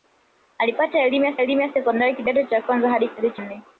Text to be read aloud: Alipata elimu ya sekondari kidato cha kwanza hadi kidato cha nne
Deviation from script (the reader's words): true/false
true